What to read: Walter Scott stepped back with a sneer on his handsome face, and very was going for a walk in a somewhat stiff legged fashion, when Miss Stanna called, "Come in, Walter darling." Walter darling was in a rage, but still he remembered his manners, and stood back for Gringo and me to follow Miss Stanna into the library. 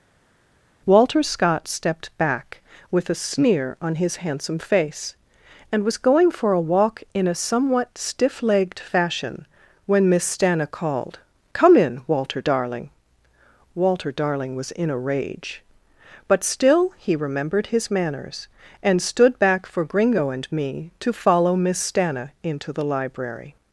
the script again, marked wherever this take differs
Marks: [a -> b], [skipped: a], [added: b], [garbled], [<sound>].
Walter Scott stepped back with a sneer on his handsome face, and [skipped: very] was going for a walk in a somewhat stiff legged fashion, when Miss Stanna called, "Come in, Walter darling." Walter darling was in a rage, but still he remembered his manners, and stood back for Gringo and me to follow Miss Stanna into the library.